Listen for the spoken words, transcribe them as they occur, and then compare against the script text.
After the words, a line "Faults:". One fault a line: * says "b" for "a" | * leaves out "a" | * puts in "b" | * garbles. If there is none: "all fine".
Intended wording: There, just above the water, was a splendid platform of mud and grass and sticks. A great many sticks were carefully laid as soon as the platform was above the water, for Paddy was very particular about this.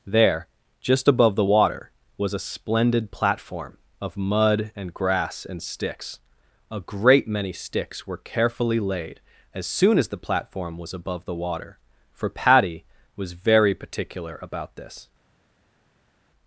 There, just above the water, was a splendid platform of mud and grass and sticks. A great many sticks were carefully laid as soon as the platform was above the water, for Paddy was very particular about this.
Faults:
all fine